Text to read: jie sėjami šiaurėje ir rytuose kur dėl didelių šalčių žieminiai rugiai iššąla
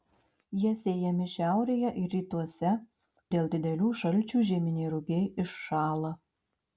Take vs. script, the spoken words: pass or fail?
fail